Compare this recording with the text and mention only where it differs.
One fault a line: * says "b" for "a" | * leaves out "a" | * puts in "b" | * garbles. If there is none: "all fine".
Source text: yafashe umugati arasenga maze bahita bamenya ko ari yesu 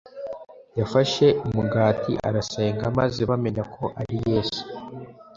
* leaves out "bahita"